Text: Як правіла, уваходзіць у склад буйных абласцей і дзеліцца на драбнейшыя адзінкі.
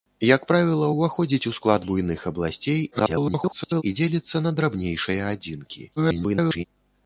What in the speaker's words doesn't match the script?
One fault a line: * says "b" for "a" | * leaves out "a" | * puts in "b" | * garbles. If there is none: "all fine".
* garbles
* garbles